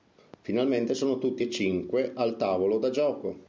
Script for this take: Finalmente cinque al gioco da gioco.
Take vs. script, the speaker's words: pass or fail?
fail